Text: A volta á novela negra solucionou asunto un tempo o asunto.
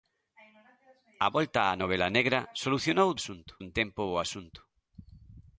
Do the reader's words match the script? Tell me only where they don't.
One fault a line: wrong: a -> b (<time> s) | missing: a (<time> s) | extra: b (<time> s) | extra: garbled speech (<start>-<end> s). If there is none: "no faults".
no faults